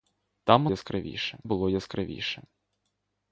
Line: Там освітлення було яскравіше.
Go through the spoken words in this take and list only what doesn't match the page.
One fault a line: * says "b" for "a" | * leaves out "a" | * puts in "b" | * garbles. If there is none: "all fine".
* says "яскравіше" for "освітлення"